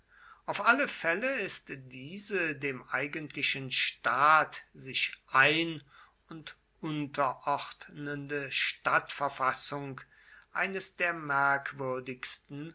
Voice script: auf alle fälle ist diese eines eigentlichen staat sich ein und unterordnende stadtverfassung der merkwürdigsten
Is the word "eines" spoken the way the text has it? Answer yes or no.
no